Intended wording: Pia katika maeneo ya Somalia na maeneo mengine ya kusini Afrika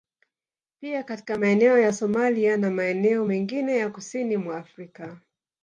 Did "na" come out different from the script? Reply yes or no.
no